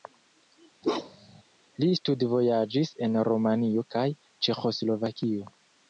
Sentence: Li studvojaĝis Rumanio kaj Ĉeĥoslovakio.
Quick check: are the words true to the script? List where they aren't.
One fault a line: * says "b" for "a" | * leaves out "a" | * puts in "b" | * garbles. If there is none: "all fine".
* puts in "en"